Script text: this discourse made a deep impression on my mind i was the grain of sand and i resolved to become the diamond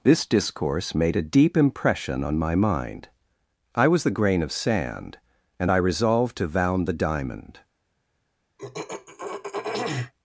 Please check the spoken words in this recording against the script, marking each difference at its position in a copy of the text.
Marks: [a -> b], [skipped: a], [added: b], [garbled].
this discourse made a deep impression on my mind i was the grain of sand and i resolved to [become -> vound] the diamond